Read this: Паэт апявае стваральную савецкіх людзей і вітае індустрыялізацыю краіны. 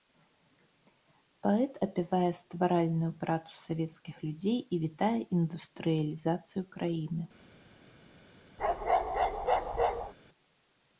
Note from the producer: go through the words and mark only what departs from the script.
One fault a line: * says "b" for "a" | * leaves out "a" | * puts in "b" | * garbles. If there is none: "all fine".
* puts in "працу"